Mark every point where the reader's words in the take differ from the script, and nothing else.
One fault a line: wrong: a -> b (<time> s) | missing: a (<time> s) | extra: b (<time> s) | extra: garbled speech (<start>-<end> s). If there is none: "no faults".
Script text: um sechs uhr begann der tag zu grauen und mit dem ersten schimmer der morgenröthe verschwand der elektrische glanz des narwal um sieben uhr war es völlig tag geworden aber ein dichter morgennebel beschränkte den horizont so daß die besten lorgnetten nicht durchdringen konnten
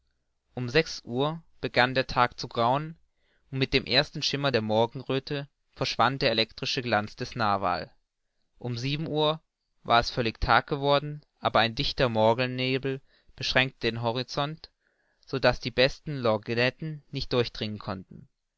no faults